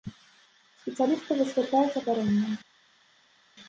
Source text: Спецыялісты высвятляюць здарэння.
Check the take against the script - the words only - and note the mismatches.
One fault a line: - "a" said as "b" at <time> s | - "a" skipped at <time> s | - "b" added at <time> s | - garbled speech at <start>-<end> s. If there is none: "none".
none